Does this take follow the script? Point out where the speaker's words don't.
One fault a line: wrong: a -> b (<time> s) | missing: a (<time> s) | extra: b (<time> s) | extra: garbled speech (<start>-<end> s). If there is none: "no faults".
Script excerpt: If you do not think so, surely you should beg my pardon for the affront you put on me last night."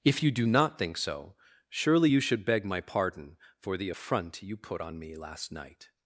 no faults